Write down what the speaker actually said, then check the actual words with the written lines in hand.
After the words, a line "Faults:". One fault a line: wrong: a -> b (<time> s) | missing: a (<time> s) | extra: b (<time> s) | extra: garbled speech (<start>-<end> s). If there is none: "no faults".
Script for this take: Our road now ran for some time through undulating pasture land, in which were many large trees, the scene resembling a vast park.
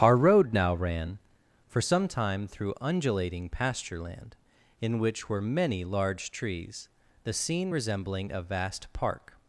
Our road now ran for some time through undulating pasture land, in which were many large trees, the scene resembling a vast park.
Faults:
no faults